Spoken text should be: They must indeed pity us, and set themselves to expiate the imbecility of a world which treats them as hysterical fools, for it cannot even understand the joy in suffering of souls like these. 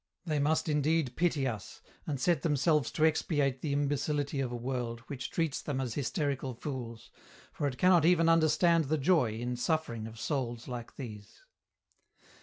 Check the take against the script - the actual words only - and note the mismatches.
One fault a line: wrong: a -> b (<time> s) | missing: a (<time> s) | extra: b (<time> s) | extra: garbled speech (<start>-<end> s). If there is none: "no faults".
no faults